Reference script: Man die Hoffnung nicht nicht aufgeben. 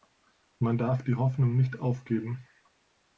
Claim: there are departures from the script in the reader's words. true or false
true